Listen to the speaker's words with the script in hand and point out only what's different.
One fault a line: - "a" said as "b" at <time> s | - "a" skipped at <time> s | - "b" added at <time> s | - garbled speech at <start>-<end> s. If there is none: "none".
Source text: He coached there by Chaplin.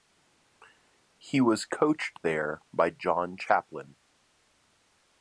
- "was" added at 1.4 s
- "John" added at 2.9 s